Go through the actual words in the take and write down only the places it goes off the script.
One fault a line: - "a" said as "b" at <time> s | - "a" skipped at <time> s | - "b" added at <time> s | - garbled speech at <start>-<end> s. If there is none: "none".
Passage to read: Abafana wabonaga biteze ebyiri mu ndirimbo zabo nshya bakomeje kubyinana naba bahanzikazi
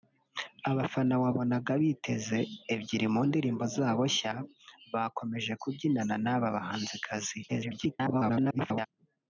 - garbled speech at 7.5-8.9 s